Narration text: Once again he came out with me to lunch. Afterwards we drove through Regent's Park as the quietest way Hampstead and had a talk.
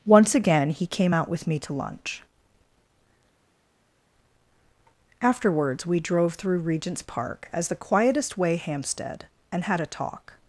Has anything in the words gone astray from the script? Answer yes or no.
no